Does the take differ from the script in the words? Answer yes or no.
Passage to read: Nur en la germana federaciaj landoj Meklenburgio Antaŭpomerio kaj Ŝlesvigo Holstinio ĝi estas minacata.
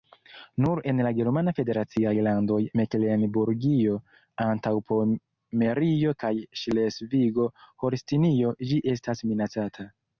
no